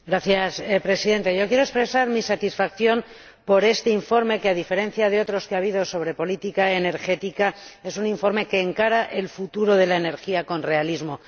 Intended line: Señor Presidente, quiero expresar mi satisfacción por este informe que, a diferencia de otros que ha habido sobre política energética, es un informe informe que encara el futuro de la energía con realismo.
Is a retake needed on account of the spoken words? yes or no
yes